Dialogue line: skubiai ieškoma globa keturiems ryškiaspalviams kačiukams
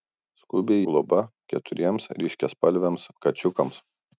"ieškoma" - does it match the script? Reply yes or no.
no